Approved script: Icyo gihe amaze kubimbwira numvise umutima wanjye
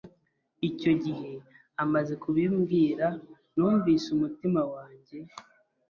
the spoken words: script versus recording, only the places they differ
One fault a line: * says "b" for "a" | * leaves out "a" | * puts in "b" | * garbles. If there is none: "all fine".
all fine